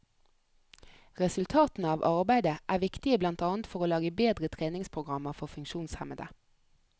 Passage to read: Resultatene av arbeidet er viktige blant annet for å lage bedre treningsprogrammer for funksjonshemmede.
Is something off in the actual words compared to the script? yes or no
no